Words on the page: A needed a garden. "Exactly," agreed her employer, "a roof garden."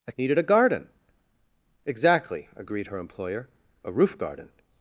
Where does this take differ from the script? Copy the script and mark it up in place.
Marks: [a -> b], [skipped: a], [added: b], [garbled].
A needed a garden. "Exactly," agreed her employer, "a roof garden."